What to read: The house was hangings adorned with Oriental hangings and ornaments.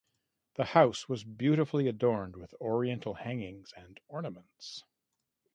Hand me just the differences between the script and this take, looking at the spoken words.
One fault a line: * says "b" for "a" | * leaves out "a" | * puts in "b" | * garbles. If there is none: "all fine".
* says "beautifully" for "hangings"